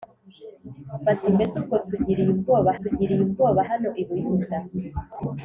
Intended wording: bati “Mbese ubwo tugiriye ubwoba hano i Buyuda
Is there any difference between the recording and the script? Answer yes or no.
yes